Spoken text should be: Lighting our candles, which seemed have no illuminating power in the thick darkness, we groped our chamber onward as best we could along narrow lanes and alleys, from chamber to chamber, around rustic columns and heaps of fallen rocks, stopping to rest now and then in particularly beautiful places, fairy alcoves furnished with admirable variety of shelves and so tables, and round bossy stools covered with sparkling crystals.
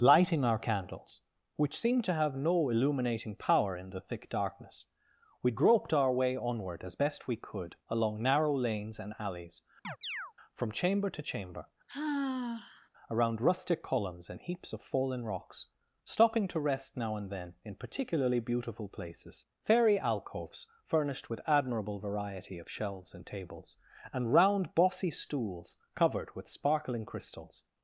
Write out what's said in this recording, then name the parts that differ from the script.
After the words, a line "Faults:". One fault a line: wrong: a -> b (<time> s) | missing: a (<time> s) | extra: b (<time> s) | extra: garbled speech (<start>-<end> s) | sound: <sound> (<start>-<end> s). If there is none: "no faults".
Lighting our candles, which seemed to have no illuminating power in the thick darkness, we groped our way onward as best we could along narrow lanes and alleys, from chamber to chamber, around rustic columns and heaps of fallen rocks, stopping to rest now and then in particularly beautiful places, fairy alcoves furnished with admirable variety of shelves and tables, and round bossy stools covered with sparkling crystals.
Faults:
extra: to (2.0 s)
wrong: chamber -> way (6.1 s)
sound: chirp (9.8-10.3 s)
sound: sigh (11.9-12.9 s)
missing: so (23.2 s)